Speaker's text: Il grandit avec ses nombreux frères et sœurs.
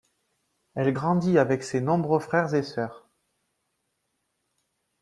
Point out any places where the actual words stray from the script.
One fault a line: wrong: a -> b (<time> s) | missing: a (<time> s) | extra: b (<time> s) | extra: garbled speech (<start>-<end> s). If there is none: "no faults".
wrong: Il -> Elle (0.7 s)